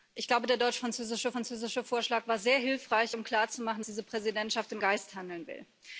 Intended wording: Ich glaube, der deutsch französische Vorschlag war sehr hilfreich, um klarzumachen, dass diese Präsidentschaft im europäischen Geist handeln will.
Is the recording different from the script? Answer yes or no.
yes